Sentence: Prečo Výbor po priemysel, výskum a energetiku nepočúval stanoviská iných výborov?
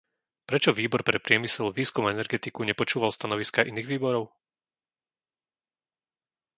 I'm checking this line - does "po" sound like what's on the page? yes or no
no